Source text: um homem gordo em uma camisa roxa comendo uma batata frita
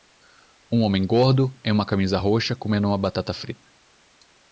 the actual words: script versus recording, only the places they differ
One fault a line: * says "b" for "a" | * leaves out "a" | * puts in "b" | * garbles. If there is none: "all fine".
all fine